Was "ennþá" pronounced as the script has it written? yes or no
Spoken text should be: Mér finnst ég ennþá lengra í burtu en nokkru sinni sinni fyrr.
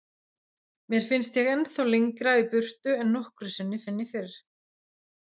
yes